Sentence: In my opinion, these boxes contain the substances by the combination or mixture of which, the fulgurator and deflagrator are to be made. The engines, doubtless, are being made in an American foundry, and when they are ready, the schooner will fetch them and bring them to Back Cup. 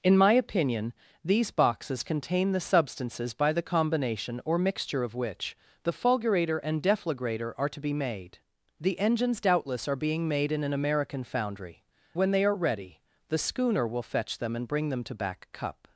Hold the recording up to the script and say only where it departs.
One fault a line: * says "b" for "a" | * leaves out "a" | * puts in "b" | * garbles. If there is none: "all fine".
* leaves out "and"